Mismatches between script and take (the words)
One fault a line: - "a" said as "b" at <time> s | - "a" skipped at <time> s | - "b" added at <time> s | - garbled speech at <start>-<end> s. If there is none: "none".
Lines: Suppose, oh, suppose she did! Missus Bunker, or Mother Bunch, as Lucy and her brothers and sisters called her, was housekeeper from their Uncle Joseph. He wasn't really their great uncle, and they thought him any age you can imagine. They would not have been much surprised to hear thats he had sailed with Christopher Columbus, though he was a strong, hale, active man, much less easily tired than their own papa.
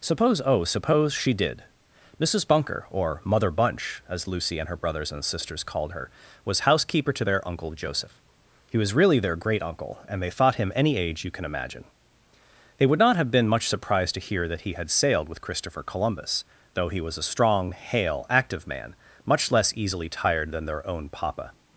- "from" said as "to" at 7.1 s
- "wasn't" said as "was" at 8.8 s
- "thats" said as "that" at 14.5 s